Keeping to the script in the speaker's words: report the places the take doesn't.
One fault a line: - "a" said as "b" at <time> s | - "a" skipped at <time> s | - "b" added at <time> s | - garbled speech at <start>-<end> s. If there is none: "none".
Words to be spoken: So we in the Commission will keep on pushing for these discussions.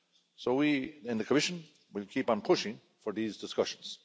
none